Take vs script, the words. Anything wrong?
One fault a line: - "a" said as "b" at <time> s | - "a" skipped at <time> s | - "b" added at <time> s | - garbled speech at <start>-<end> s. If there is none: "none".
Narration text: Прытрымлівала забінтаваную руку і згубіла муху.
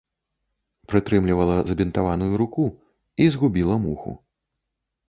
none